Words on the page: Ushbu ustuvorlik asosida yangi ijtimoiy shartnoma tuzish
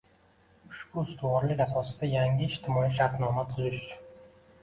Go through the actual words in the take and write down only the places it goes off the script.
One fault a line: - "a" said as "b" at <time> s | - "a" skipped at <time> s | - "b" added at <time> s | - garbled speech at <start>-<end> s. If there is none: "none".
none